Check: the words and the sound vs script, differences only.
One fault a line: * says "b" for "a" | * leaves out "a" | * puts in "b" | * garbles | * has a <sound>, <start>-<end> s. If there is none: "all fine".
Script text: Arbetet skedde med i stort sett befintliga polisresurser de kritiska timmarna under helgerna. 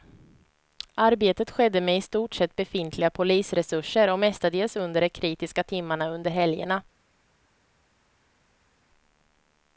* puts in "och mestadels under"